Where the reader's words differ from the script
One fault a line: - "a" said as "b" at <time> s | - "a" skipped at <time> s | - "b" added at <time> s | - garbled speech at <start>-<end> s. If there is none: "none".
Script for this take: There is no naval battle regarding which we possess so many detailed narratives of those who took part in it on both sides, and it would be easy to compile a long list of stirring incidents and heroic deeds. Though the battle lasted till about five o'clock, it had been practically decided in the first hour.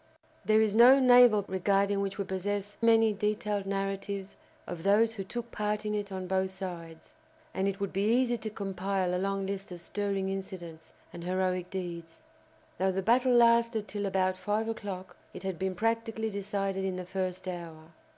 - "battle" skipped at 1.4 s
- "so" skipped at 2.8 s